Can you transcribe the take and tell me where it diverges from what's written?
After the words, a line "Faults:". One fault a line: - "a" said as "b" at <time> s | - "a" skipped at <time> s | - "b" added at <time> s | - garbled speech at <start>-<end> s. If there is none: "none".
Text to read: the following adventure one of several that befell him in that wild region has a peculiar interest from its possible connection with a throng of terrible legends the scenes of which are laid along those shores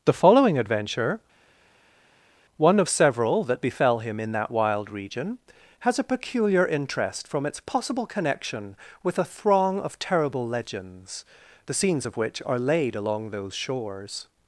the following adventure one of several that befell him in that wild region has a peculiar interest from its possible connection with a throng of terrible legends the scenes of which are laid along those shores
Faults:
none